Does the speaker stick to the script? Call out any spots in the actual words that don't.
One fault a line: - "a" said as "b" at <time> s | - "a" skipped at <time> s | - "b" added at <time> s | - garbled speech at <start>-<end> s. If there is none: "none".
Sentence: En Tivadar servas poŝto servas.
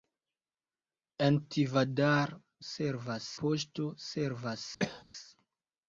none